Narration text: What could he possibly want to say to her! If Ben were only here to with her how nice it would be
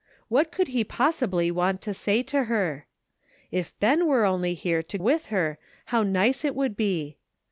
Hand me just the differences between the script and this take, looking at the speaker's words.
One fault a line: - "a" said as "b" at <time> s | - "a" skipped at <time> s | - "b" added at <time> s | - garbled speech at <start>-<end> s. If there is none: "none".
none